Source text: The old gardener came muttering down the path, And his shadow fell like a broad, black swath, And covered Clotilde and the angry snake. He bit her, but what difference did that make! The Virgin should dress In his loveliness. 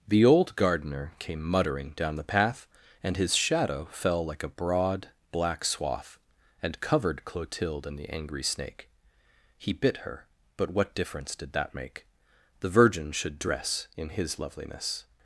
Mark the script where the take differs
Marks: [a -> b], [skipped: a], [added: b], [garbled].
The old gardener came muttering down the path, And his shadow fell like a broad, black swath, And covered Clotilde and the angry snake. He bit her, but what difference did that make! The Virgin should dress In his loveliness.